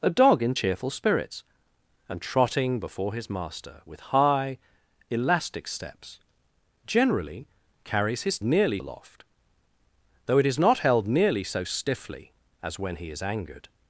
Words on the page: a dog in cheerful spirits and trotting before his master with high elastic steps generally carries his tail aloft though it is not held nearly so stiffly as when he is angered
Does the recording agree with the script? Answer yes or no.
no